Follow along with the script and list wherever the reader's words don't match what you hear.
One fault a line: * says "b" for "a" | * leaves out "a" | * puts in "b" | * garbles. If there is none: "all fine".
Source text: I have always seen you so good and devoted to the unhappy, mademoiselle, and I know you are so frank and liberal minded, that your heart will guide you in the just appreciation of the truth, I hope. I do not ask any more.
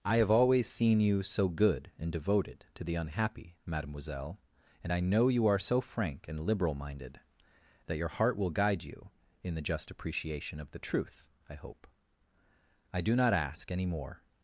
all fine